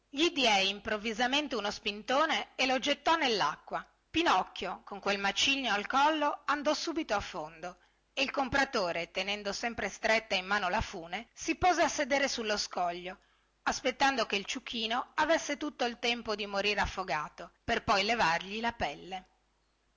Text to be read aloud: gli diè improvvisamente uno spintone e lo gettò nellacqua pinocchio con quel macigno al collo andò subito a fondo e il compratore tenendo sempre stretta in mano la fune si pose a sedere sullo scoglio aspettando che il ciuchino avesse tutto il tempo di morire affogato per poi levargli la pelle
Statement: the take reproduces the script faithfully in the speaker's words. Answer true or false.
true